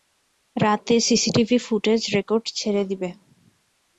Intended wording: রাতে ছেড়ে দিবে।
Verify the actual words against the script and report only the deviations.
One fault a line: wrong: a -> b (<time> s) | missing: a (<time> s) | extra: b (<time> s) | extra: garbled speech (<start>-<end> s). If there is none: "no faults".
extra: সিসিটিভি ফুটেজ রেকর্ড (1.1 s)